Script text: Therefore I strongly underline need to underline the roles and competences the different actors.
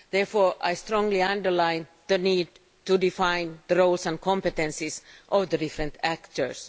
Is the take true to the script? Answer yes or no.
no